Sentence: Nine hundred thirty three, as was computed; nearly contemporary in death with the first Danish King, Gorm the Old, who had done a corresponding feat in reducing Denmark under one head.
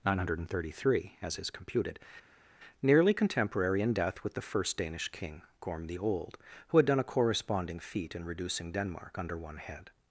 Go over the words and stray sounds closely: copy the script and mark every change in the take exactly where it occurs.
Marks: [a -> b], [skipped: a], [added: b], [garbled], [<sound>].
Nine hundred thirty three, as [was -> is] computed; nearly contemporary in death with the first Danish King, Gorm the Old, who had done a corresponding feat in reducing Denmark under one head.